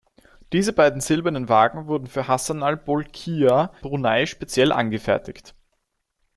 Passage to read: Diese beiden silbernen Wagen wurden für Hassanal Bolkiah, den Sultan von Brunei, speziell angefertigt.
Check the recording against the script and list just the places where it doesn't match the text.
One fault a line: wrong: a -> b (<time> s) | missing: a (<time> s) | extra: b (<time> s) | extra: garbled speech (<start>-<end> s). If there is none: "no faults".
missing: den Sultan von (3.7 s)